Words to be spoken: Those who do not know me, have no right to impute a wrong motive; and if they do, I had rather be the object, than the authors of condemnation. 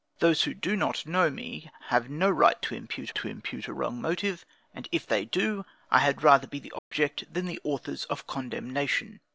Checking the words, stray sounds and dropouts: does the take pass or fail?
fail